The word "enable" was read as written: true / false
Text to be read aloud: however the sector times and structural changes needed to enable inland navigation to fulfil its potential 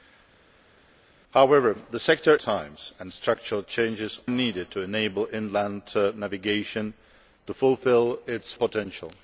true